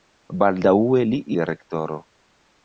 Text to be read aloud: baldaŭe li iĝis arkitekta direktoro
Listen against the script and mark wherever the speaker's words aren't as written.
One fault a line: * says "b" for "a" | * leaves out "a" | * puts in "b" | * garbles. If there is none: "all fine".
* leaves out "iĝis arkitekta"